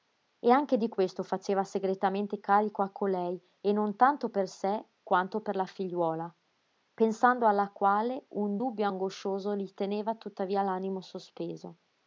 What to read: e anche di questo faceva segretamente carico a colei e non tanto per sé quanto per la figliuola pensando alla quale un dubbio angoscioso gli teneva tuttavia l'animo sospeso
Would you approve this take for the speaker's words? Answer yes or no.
yes